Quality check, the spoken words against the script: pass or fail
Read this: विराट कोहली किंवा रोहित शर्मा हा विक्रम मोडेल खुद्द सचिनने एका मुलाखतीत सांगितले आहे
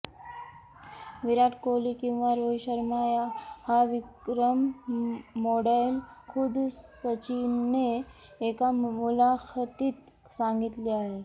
pass